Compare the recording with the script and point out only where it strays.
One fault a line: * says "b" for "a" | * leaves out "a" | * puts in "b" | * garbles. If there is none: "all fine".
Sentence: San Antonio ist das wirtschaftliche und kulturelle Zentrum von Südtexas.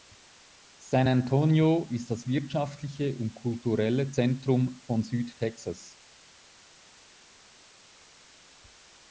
all fine